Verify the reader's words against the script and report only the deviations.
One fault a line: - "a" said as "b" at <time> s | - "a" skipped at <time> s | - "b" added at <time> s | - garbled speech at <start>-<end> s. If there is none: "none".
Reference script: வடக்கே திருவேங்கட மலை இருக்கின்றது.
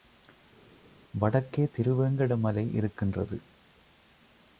none